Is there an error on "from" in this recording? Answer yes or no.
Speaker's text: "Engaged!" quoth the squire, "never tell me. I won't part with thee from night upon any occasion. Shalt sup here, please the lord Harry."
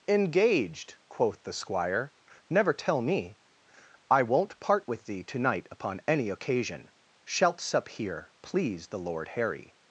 yes